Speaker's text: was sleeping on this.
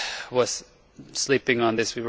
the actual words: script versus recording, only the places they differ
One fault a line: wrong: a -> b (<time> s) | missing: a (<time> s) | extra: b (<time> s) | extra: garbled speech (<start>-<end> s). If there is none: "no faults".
no faults